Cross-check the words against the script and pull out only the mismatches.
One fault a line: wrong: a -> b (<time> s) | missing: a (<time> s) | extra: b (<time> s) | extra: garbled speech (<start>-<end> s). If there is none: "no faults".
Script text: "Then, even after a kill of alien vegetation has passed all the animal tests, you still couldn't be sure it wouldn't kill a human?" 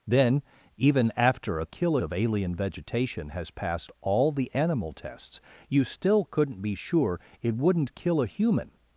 no faults